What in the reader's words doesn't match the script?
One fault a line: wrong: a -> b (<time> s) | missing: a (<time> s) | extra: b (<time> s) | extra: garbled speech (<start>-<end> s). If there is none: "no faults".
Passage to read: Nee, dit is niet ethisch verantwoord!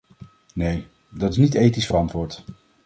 wrong: dit -> dat (1.1 s)